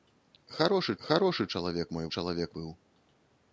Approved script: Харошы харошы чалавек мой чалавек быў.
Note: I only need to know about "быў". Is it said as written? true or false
true